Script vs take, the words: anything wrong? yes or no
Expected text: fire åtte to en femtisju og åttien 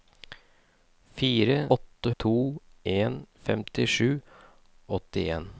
no